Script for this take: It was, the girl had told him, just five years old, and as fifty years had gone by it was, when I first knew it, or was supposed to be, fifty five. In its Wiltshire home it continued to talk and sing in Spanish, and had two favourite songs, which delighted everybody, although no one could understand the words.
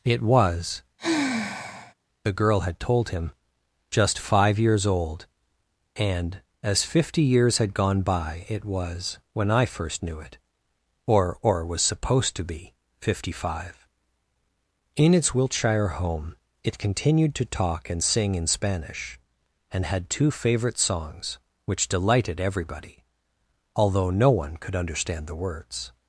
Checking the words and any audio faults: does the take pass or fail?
fail